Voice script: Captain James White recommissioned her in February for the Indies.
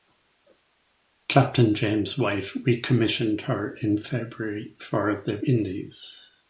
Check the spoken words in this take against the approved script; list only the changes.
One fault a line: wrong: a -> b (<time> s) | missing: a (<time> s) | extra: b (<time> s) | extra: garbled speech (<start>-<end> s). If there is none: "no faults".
no faults